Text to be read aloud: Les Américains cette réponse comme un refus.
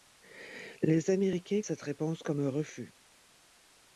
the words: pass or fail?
pass